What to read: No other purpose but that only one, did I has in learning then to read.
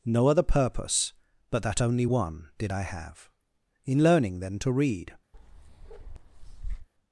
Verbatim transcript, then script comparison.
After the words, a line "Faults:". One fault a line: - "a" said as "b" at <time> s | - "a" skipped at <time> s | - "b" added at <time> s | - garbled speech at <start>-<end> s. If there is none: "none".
No other purpose but that only one, did I have in learning then to read.
Faults:
- "has" said as "have" at 2.8 s